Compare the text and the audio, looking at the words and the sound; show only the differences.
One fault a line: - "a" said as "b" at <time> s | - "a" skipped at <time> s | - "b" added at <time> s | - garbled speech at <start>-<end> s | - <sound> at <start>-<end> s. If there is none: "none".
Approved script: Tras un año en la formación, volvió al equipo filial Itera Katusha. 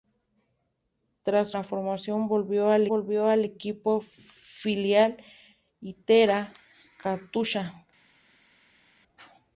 - "un año en la formación" said as "la formación volvió al" at 1.5 s